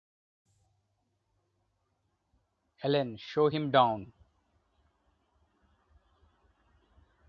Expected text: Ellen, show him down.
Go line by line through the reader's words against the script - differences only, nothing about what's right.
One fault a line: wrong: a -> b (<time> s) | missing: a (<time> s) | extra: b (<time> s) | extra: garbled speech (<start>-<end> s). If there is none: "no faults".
no faults